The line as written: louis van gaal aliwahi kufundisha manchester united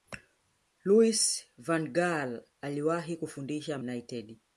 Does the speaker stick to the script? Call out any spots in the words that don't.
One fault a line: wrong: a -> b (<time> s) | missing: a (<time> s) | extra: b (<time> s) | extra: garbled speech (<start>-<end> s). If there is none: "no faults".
missing: manchester (3.8 s)